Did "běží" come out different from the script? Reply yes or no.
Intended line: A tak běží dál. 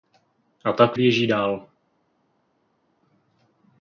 no